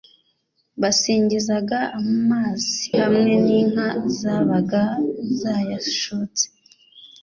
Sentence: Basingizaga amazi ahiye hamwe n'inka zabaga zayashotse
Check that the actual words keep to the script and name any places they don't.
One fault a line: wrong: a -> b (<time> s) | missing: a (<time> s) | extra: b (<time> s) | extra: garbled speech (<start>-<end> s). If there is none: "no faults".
missing: ahiye (2.8 s)